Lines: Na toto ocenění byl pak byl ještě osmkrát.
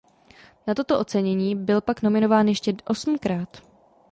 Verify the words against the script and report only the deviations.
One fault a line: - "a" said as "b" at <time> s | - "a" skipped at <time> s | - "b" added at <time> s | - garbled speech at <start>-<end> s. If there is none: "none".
- "byl" said as "nominován" at 2.0 s